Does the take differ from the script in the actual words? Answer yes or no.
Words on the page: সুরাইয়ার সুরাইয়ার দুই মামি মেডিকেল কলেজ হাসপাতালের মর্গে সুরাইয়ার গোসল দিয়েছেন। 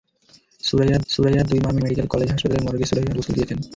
no